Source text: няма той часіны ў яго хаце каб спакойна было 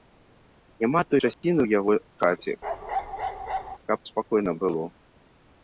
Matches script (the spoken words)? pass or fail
pass